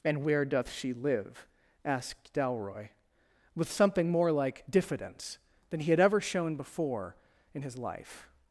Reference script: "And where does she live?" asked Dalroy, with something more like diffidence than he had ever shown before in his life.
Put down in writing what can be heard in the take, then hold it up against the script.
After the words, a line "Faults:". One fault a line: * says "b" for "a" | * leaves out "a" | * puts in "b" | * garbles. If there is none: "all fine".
"And where doth she live?" asked Dalroy, with something more like diffidence than he had ever shown before in his life.
Faults:
* says "doth" for "does"